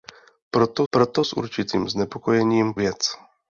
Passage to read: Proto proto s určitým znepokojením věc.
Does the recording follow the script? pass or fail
pass